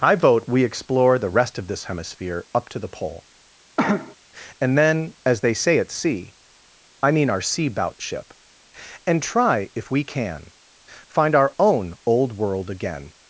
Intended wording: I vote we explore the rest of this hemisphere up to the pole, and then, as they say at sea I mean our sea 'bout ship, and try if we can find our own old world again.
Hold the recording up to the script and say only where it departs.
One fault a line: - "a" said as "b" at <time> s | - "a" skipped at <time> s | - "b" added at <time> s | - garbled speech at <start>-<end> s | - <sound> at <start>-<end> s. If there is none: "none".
- cough at 3.8-4.2 s